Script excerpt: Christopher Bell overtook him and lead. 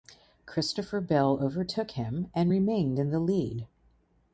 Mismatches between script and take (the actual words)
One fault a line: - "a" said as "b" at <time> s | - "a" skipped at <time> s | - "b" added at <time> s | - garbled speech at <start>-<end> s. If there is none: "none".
- "remained in the" added at 2.5 s